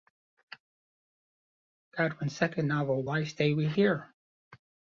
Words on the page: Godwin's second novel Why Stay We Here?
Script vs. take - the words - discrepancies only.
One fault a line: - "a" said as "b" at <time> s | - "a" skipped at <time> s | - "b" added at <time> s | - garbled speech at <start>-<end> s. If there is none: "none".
none